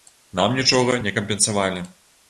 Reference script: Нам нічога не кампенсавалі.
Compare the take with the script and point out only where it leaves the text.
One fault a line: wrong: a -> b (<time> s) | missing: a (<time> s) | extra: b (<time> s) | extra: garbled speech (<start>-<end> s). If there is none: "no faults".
no faults